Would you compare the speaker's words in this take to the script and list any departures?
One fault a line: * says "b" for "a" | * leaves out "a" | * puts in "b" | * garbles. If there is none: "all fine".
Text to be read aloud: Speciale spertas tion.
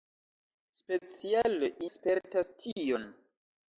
all fine